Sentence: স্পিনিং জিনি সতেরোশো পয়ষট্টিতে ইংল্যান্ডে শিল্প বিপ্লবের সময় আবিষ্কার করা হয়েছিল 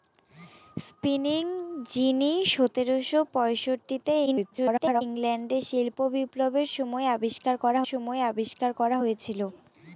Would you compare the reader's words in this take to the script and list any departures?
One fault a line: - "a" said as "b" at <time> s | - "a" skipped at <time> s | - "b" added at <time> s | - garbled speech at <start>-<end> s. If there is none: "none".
- garbled speech at 4.3-5.0 s
- "সময় আবিষ্কার করা" added at 7.9 s